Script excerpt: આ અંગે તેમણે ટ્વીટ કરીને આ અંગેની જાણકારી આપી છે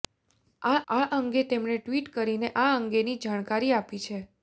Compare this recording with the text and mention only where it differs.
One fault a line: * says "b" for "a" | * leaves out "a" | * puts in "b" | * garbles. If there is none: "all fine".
* puts in "આ"